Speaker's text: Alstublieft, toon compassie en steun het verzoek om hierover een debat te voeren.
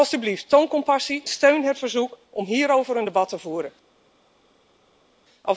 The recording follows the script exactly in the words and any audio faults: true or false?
false